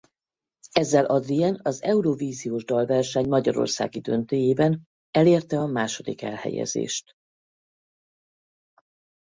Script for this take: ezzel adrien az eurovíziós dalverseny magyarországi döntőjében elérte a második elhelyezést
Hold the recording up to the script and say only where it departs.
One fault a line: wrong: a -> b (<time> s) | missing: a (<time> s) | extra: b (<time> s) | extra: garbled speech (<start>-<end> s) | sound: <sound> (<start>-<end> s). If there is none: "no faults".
no faults